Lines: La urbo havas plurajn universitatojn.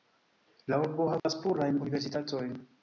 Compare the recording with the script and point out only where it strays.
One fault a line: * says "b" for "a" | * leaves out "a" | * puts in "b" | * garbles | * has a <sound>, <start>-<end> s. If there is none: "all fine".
* has a dropout, 1.2-1.2 s